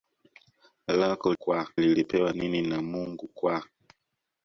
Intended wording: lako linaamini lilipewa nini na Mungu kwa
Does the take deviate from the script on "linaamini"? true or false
true